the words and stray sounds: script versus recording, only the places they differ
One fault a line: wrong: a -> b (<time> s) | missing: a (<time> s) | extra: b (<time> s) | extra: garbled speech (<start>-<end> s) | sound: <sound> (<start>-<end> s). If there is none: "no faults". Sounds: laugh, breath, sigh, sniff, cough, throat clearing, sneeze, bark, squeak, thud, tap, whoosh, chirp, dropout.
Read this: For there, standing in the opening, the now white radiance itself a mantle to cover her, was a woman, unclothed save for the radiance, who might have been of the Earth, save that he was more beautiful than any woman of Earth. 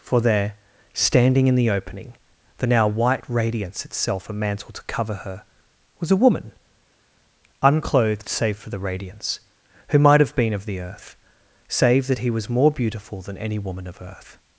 no faults